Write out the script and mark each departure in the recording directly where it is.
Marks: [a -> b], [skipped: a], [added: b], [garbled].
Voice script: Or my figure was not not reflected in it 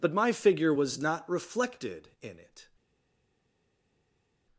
[Or -> But] my figure was not [skipped: not] reflected in it